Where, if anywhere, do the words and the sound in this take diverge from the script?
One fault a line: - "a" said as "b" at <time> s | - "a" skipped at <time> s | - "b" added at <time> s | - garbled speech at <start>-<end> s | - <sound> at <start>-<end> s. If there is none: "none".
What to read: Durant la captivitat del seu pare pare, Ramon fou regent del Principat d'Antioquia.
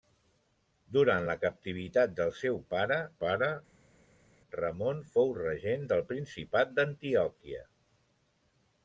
none